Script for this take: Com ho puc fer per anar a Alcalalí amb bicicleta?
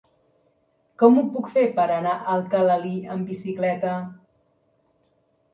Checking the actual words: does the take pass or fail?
pass